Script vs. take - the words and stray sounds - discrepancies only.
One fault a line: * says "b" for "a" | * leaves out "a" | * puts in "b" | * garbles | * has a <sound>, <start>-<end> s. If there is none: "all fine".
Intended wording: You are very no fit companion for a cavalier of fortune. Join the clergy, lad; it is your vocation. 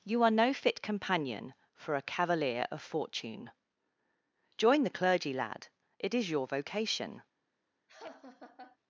* leaves out "very"
* has a laugh, 7.9-8.8 s